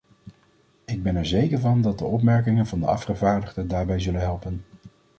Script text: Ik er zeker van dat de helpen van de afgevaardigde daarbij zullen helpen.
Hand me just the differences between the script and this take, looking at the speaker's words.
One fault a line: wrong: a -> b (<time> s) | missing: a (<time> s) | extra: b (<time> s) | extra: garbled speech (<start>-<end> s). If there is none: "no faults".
extra: ben (1.0 s)
wrong: helpen -> opmerkingen (2.0 s)